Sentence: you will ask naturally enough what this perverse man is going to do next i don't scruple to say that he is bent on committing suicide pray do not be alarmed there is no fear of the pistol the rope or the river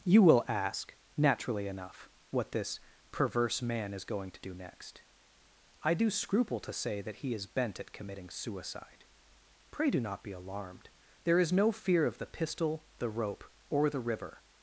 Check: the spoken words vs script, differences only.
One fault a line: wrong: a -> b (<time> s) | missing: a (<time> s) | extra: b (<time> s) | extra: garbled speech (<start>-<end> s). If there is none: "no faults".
wrong: don't -> do (5.9 s)
wrong: on -> at (7.8 s)